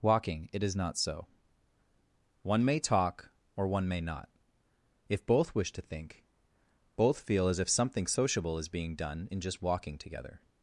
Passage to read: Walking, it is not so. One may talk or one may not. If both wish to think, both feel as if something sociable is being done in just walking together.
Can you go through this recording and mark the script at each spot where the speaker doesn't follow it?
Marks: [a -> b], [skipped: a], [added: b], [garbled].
Walking, it is not so. One may talk or one may not. If both wish to think, both feel as if something sociable is being done in just walking together.